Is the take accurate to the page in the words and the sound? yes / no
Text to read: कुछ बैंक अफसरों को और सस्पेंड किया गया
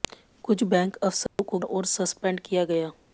no